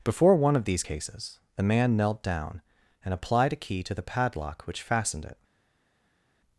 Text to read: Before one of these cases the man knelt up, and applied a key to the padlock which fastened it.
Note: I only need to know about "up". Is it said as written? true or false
false